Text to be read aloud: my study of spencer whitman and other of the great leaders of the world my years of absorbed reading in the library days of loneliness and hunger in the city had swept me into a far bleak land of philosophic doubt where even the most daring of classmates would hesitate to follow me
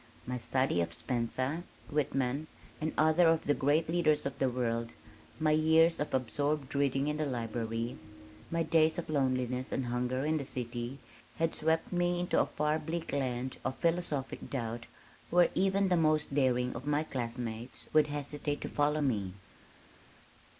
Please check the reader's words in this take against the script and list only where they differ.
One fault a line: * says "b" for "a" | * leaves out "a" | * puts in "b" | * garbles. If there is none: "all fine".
* puts in "my"
* puts in "my"